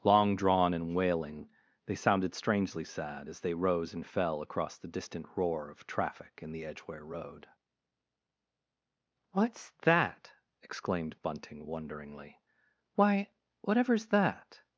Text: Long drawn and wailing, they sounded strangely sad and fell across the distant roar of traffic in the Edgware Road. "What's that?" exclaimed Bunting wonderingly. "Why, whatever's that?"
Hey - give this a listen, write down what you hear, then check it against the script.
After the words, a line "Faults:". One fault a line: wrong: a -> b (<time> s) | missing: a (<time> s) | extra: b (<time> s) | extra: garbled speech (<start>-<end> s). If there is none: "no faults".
Long drawn and wailing, they sounded strangely sad as they rose and fell across the distant roar of traffic in the Edgware Road. "What's that?" exclaimed Bunting wonderingly. "Why, whatever's that?"
Faults:
extra: as they rose (3.3 s)